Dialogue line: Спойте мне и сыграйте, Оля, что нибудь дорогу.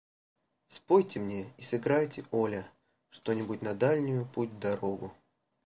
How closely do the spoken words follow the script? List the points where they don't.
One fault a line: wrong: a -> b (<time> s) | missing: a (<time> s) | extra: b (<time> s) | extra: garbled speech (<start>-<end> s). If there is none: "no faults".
extra: на дальнюю путь (3.6 s)